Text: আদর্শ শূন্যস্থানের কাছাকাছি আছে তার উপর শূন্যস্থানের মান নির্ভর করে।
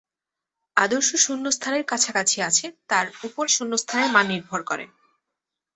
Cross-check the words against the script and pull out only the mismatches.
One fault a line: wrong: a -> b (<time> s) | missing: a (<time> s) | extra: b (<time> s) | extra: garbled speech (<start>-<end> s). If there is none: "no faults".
no faults